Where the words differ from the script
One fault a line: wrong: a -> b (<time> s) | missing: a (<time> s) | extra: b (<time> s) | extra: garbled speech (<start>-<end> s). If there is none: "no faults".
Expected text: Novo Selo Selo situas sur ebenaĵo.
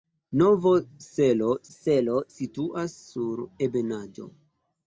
no faults